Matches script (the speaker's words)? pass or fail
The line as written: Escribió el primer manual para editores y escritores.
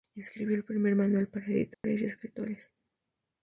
pass